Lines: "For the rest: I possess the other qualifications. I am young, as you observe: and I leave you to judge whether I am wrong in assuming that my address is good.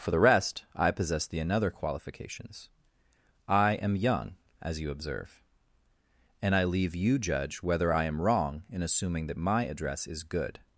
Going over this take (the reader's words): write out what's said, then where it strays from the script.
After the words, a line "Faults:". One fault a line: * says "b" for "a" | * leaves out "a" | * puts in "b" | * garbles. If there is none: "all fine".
"For the rest: I possess the another qualifications. I am young, as you observe: and I leave you judge whether I am wrong in assuming that my address is good.
Faults:
* says "another" for "other"
* leaves out "to"